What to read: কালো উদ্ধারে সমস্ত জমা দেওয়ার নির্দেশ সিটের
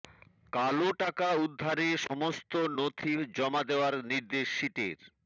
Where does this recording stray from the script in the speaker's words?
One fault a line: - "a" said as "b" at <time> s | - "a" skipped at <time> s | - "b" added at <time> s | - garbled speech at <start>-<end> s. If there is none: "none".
- "টাকা" added at 1.0 s
- "নথি" added at 2.8 s